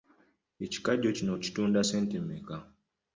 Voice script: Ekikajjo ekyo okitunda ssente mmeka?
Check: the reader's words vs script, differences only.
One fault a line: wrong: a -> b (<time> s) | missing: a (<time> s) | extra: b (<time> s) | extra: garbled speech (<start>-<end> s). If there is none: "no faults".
wrong: ekyo -> kino (1.1 s)